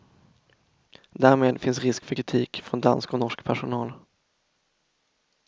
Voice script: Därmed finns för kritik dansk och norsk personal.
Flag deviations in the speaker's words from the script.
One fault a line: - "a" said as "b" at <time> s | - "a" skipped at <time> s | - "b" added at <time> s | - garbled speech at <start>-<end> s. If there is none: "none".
- "risk" added at 1.8 s
- "från" added at 2.6 s